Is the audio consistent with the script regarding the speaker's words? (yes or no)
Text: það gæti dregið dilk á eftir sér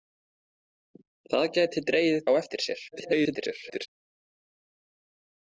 no